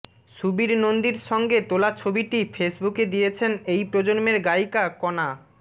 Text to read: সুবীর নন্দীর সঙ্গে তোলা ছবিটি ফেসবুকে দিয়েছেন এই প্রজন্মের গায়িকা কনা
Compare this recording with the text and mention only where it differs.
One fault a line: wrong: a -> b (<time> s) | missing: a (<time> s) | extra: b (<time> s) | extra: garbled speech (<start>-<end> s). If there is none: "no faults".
no faults